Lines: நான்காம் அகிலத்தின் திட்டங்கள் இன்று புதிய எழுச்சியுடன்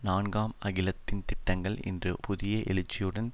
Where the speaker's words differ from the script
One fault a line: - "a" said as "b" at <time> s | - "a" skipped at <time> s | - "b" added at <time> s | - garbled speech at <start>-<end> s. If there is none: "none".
none